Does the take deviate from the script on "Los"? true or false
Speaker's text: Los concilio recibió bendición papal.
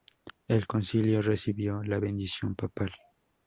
true